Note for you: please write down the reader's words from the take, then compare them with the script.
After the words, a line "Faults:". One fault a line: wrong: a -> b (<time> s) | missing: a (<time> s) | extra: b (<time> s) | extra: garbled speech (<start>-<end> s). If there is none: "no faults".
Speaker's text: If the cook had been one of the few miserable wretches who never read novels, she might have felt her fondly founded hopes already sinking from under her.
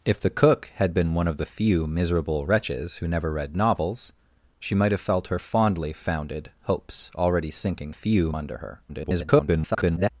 If the cook had been one of the few miserable wretches who never read novels, she might have felt her fondly founded hopes already sinking few under her. [garbled]
Faults:
wrong: from -> few (7.9 s)
extra: garbled speech (8.9-10.1 s)